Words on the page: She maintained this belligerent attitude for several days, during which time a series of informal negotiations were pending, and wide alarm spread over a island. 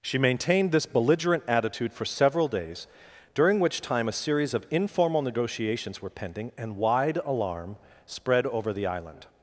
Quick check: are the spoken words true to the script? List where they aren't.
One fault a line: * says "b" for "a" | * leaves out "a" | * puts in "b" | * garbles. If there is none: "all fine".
* says "the" for "a"